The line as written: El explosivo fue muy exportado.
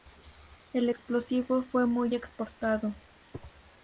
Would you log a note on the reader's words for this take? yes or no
no